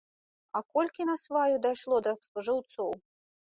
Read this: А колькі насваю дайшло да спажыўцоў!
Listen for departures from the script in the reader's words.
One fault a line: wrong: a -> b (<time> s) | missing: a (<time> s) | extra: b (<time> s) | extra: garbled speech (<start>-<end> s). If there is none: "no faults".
no faults